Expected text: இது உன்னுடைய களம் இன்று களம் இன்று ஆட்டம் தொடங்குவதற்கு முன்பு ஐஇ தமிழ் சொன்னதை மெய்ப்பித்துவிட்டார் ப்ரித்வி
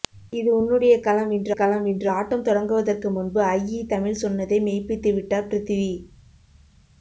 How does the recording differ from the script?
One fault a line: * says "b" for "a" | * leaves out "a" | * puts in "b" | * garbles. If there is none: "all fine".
all fine